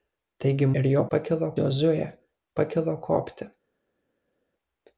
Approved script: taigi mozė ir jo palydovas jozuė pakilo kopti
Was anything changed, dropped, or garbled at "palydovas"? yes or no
yes